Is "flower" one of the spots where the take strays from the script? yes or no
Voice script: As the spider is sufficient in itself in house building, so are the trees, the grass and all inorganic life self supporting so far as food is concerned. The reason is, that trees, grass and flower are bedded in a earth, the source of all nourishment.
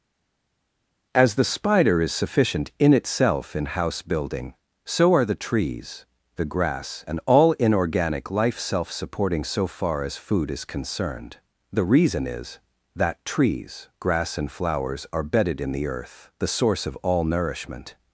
yes